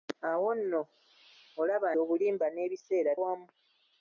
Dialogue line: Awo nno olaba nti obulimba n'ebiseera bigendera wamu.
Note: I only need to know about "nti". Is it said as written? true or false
false